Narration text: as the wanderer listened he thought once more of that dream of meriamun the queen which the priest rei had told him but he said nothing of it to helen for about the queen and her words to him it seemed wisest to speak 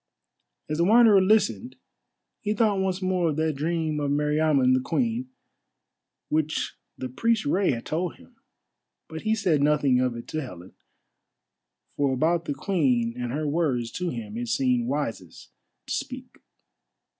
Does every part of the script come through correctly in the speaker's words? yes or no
yes